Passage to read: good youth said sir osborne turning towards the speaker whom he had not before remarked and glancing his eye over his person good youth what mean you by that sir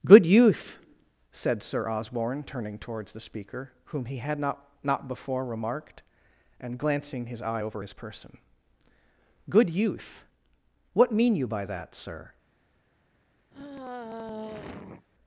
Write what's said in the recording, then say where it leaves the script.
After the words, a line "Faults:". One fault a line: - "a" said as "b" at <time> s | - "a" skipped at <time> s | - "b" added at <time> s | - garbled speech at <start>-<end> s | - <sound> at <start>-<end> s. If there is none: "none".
good youth said sir osborne turning towards the speaker whom he had not not before remarked and glancing his eye over his person good youth what mean you by that sir
Faults:
- "not" added at 4.8 s
- sigh at 13.5-15.1 s